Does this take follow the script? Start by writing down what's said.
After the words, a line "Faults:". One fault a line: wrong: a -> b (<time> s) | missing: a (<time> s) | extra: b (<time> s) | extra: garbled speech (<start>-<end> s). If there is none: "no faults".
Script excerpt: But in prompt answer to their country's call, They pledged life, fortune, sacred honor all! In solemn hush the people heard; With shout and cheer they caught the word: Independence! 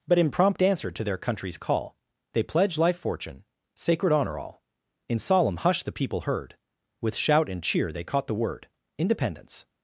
But in prompt answer to their country's call, They pledged life, fortune, sacred honor all! In solemn hush the people heard; With shout and cheer they caught the word: Independence!
Faults:
no faults